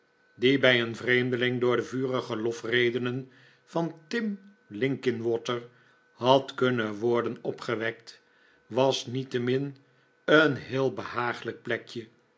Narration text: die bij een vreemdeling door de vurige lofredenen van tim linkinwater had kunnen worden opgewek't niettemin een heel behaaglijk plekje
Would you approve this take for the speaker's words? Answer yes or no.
no